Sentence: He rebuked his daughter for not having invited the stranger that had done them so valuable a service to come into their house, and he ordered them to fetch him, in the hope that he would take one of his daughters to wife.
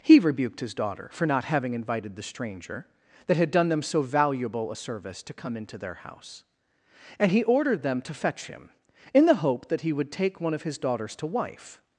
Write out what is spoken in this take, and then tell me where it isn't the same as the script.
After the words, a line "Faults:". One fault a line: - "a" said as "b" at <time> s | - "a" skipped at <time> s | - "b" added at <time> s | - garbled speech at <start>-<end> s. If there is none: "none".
He rebuked his daughter for not having invited the stranger that had done them so valuable a service to come into their house, and he ordered them to fetch him, in the hope that he would take one of his daughters to wife.
Faults:
none